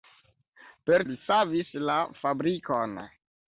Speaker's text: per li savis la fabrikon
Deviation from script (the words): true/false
false